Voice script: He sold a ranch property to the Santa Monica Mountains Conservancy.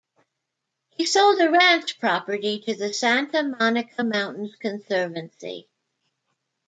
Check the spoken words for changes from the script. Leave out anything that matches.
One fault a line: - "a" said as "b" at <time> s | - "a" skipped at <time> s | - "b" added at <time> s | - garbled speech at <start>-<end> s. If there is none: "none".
none